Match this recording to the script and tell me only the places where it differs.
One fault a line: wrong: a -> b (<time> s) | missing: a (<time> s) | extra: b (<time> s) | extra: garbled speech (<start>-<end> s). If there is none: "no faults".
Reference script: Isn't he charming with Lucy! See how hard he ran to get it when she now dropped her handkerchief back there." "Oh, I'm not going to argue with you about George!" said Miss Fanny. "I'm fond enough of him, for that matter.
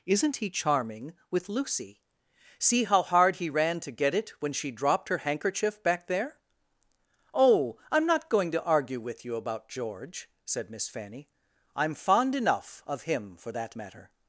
missing: now (4.7 s)